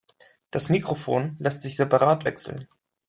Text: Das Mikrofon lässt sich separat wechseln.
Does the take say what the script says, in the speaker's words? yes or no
yes